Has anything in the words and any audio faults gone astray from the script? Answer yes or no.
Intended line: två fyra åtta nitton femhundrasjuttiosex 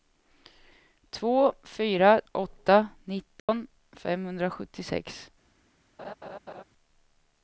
yes